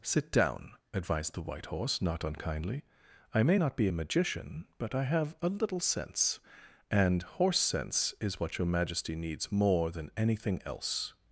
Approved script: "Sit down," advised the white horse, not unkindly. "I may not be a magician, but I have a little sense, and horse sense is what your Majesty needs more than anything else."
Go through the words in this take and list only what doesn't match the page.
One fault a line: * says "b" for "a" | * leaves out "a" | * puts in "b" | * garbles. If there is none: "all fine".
all fine